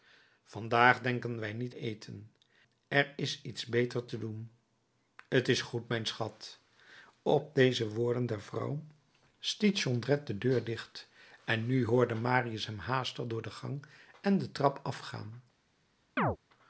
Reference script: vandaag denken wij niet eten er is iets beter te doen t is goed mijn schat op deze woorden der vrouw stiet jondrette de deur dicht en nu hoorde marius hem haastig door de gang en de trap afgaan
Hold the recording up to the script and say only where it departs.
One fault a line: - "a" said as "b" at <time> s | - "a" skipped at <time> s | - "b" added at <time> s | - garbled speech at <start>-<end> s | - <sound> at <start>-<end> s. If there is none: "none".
- chirp at 16.2-16.4 s